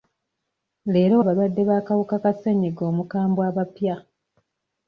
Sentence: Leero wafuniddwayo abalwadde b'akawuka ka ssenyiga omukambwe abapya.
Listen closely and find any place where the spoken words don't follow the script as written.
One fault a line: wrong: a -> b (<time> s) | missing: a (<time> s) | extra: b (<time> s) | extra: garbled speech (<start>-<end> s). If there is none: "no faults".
missing: wafuniddwayo (1.1 s)